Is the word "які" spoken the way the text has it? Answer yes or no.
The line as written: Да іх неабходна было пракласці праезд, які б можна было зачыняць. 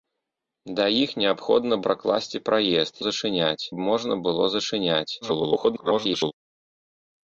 no